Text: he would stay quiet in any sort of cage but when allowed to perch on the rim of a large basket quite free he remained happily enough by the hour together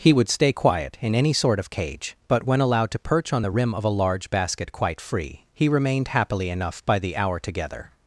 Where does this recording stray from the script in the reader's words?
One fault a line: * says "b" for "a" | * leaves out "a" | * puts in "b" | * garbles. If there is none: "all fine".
all fine